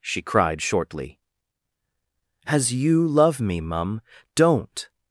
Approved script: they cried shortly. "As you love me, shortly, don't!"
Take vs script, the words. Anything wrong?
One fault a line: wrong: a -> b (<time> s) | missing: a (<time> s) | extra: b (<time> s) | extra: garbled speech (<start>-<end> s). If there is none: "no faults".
wrong: they -> she (0.0 s)
wrong: shortly -> mum (3.6 s)